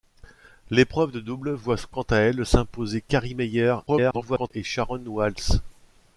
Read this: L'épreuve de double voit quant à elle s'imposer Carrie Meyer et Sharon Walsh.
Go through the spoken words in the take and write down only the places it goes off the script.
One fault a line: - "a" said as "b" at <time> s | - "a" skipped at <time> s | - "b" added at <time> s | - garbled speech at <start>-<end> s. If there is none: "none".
- garbled speech at 3.9-4.5 s